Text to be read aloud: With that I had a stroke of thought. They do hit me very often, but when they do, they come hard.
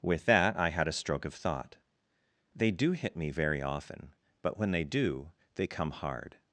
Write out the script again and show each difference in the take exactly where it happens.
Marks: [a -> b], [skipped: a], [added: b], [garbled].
With that I had a stroke of thought. They do hit me very often, but when they do, they come hard.